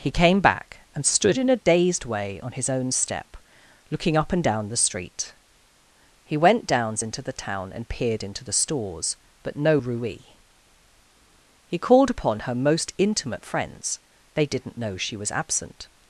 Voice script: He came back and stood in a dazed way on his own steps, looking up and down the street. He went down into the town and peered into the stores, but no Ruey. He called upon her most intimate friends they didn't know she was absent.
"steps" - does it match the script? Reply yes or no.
no